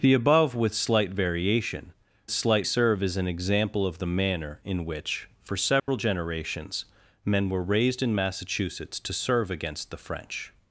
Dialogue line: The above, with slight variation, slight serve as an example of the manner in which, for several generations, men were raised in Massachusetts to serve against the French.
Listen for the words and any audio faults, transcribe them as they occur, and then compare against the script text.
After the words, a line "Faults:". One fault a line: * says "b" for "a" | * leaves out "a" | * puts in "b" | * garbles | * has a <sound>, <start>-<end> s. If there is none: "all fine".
The above, with slight variation, slight serve as an example of the manner in which, for several generations, men were raised in Massachusetts to serve against the French.
Faults:
* has a dropout, 5.8-5.9 s